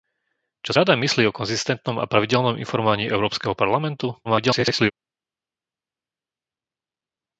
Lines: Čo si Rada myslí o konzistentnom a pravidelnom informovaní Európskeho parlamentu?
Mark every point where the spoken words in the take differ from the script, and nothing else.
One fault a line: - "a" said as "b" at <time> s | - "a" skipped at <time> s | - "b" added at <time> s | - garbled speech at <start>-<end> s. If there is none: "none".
- "si" skipped at 0.7 s
- garbled speech at 4.2-4.9 s